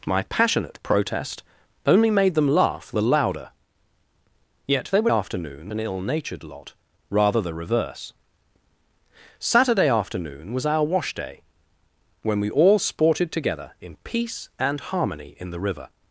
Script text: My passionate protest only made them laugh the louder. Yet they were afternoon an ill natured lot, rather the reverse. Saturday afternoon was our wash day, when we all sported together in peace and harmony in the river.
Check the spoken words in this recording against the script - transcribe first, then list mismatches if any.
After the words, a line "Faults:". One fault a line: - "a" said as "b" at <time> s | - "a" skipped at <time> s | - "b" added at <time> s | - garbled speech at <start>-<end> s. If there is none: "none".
My passionate protest only made them laugh the louder. Yet they were afternoon an ill natured lot, rather the reverse. Saturday afternoon was our wash day, when we all sported together in peace and harmony in the river.
Faults:
none